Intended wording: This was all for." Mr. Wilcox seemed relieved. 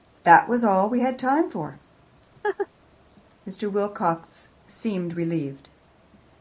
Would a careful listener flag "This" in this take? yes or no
yes